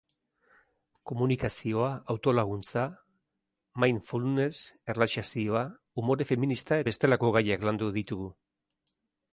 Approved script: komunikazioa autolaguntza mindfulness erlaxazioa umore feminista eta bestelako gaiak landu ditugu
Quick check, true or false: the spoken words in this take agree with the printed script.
false